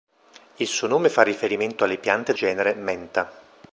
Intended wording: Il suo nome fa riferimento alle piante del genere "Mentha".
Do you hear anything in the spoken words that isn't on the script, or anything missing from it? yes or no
yes